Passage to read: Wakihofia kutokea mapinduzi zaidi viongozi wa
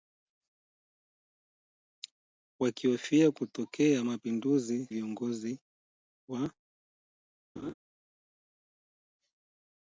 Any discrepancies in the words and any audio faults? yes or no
yes